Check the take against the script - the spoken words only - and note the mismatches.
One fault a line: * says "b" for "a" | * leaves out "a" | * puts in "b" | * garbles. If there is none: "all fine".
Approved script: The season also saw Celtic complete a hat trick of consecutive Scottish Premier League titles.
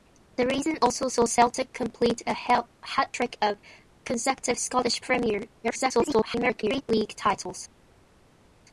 * garbles